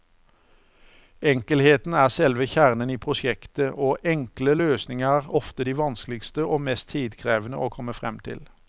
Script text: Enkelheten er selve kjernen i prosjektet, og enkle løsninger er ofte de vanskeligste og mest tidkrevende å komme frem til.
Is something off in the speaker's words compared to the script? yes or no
no